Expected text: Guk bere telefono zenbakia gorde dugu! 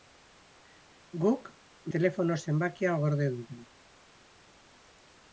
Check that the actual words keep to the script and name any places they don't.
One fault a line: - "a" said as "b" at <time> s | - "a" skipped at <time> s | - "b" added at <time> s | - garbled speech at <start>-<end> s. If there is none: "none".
- "bere" skipped at 1.5 s